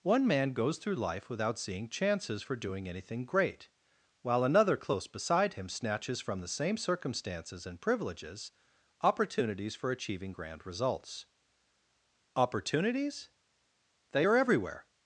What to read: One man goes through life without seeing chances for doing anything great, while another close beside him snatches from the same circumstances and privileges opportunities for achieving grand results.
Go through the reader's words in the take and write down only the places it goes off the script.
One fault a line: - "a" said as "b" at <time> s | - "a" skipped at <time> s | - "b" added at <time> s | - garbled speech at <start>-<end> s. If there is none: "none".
- "Opportunities They are everywhere" added at 12.3 s